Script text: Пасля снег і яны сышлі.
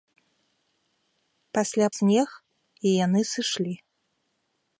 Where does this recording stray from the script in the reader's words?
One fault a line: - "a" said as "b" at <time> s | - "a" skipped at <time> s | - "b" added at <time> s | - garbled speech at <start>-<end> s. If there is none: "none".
none